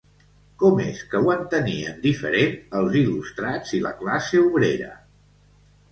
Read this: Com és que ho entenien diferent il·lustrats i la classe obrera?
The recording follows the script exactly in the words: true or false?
false